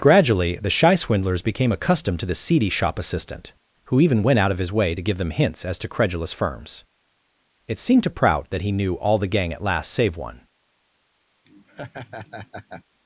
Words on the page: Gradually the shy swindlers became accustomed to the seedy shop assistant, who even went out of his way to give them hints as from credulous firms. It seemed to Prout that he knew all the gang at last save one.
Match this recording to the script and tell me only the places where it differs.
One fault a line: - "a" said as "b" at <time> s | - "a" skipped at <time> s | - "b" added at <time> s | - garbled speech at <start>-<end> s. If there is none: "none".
- "from" said as "to" at 5.8 s